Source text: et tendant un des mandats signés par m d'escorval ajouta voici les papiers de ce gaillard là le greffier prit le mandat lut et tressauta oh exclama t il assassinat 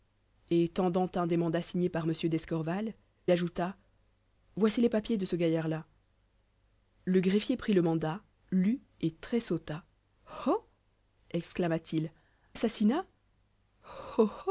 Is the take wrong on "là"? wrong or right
right